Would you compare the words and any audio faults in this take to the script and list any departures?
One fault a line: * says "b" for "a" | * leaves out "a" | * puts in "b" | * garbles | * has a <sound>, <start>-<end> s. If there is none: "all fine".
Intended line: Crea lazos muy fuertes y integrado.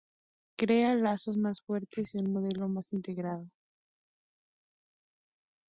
* says "más" for "muy"
* puts in "un modelo más"